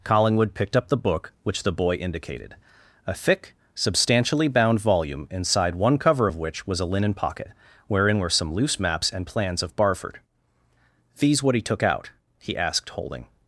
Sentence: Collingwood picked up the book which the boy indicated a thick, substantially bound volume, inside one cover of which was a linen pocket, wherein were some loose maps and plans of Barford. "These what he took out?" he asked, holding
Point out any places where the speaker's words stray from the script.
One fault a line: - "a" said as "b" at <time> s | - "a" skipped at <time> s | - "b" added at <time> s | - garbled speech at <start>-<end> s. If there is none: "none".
none